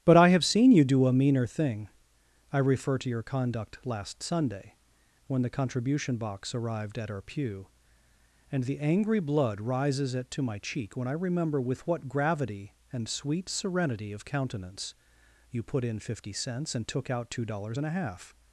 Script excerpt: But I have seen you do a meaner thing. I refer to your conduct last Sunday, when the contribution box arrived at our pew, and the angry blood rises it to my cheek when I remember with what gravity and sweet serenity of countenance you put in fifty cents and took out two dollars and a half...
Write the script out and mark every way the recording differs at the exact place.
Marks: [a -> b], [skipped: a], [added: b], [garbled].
But I have seen you do a meaner thing. I refer to your conduct last Sunday, when the contribution box arrived at our pew, and the angry blood rises it to my cheek when I remember with what gravity and sweet serenity of countenance you put in fifty cents and took out two dollars and a half...